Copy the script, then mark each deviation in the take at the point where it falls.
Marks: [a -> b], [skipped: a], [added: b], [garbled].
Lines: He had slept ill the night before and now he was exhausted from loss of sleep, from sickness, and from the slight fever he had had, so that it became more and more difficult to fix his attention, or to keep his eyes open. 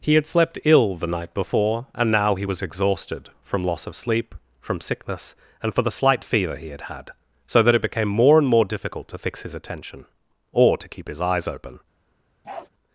He had slept ill the night before and now he was exhausted from loss of sleep, from sickness, and [from -> for] the slight fever he had had, so that it became more and more difficult to fix his attention, or to keep his eyes open.